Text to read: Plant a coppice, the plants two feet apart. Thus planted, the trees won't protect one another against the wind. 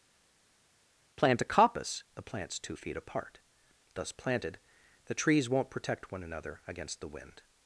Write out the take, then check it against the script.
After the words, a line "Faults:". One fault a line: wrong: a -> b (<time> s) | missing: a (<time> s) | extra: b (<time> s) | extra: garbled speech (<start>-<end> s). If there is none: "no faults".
Plant a coppice, the plants two feet apart. Thus planted, the trees won't protect one another against the wind.
Faults:
no faults